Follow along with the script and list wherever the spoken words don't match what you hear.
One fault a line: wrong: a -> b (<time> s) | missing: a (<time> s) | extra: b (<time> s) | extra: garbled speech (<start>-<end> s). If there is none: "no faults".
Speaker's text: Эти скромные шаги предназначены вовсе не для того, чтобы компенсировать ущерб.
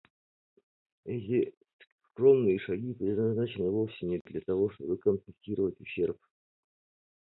no faults